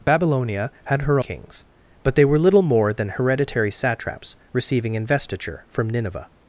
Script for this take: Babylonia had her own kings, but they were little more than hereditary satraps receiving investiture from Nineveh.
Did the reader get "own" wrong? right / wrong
wrong